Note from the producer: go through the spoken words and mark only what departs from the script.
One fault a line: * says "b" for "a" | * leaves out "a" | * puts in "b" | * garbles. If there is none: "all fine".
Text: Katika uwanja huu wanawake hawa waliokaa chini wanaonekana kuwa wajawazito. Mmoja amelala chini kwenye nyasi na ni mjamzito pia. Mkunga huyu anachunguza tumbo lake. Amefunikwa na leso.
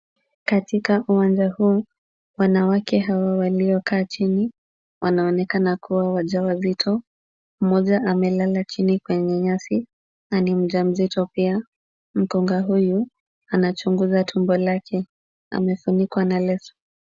all fine